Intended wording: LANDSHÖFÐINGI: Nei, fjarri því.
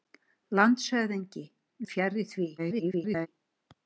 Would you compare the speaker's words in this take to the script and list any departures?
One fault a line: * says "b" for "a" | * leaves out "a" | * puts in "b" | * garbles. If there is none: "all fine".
* leaves out "Nei"
* garbles